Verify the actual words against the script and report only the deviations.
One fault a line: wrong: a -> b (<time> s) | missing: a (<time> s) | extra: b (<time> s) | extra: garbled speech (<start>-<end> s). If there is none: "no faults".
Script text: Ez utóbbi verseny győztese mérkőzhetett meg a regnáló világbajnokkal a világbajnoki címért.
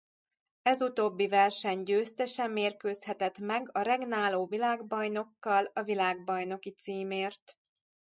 no faults